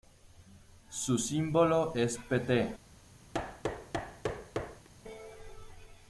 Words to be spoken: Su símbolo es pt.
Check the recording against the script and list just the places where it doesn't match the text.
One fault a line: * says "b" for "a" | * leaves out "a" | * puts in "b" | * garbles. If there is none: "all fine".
all fine